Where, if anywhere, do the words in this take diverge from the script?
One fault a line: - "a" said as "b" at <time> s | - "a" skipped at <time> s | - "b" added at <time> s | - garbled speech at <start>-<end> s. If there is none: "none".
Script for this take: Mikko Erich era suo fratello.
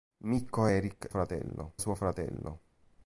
- "era" said as "fratello" at 1.1 s